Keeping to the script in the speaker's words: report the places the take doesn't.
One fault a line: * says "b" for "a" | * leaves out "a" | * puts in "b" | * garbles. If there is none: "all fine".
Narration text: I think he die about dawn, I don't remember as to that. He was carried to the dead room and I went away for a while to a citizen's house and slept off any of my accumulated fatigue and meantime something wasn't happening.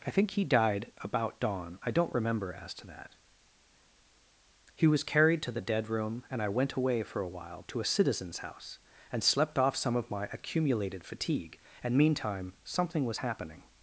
* says "died" for "die"
* says "some" for "any"
* says "was" for "wasn't"